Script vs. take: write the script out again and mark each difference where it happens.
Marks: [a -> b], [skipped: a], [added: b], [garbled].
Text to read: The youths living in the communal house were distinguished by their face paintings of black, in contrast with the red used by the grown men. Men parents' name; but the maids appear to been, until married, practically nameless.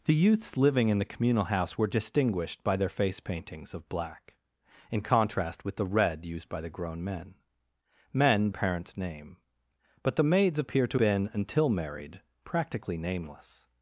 The youths living in the communal house were distinguished by their face paintings of black, in contrast with the red used by the grown men. Men parents' name; but the maids appear to been, until married, practically nameless.